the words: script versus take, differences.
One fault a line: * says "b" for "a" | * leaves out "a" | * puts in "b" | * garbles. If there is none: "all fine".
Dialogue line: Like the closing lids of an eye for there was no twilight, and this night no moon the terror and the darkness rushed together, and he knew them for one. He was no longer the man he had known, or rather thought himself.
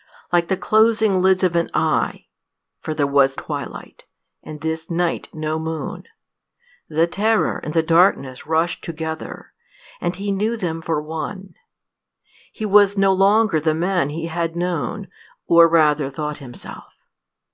* leaves out "no"